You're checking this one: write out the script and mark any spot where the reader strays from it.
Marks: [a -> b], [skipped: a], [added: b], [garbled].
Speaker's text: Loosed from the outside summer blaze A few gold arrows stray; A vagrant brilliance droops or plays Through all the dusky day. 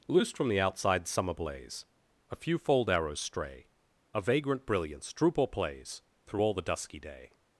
Loosed from the outside summer blaze A few [gold -> fold] arrows stray; A vagrant brilliance [droops -> droop] or plays Through all the dusky day.